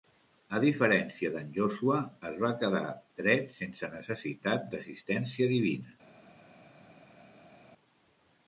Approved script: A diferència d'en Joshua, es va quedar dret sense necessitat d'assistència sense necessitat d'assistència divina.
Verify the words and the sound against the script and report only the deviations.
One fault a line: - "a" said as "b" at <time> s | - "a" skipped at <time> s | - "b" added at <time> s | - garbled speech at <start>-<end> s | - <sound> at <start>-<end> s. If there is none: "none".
- "sense necessitat d'assistència" skipped at 5.5 s